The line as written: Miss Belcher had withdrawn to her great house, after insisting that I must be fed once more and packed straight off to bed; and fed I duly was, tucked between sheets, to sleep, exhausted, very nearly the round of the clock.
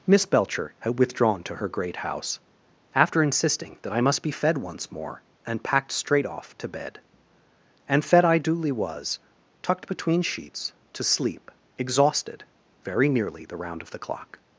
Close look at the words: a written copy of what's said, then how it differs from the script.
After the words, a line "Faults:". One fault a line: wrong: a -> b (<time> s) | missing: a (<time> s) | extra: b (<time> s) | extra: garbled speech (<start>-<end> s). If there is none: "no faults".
Miss Belcher had withdrawn to her great house, after insisting that I must be fed once more and packed straight off to bed; and fed I duly was, tucked between sheets, to sleep, exhausted, very nearly the round of the clock.
Faults:
no faults